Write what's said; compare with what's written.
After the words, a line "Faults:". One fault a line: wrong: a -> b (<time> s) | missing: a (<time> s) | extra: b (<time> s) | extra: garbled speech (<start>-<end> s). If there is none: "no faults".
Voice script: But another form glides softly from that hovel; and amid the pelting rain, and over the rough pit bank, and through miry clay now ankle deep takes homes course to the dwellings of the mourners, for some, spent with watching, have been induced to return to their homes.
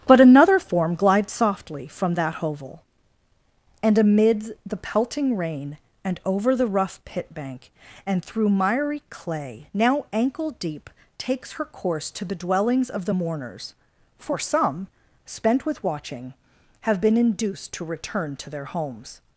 But another form glides softly from that hovel; and amid the pelting rain, and over the rough pit bank, and through miry clay now ankle deep takes her course to the dwellings of the mourners, for some, spent with watching, have been induced to return to their homes.
Faults:
wrong: homes -> her (11.5 s)